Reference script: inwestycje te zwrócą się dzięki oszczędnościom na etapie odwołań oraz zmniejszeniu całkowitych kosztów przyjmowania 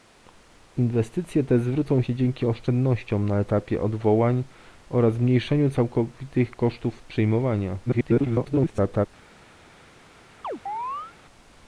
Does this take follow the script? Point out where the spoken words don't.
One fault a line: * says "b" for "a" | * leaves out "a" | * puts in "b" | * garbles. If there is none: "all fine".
* garbles